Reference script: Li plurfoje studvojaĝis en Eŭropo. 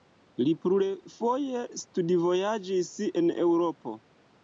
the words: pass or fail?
pass